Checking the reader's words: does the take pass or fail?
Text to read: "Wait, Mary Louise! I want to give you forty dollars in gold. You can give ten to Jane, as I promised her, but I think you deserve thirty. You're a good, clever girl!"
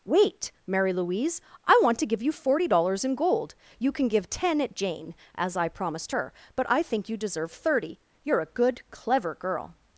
fail